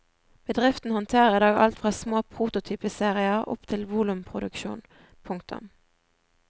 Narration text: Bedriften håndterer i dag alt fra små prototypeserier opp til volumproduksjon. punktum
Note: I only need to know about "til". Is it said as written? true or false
true